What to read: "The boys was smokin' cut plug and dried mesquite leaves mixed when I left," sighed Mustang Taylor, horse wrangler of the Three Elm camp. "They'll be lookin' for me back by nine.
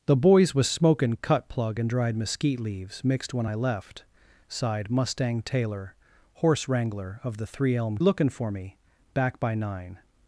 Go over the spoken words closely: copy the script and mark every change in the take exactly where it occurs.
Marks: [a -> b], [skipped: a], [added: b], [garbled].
"The boys was smokin' cut plug and dried mesquite leaves mixed when I left," sighed Mustang Taylor, horse wrangler of the Three Elm [skipped: camp. "They'll be] lookin' for me back by nine.